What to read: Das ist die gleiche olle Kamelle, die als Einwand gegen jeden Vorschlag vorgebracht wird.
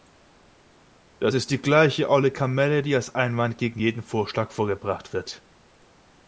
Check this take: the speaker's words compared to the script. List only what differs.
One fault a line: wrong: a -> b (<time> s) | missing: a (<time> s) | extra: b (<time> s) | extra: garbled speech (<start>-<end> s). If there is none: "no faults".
no faults